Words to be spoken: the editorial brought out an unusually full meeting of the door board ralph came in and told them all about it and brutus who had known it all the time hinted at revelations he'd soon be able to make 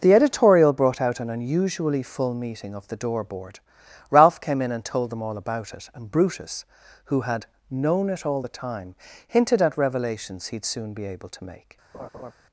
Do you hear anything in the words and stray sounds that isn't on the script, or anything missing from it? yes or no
yes